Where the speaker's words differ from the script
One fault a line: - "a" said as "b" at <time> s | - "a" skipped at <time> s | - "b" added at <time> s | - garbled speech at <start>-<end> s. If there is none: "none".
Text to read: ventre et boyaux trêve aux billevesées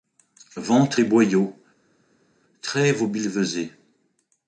none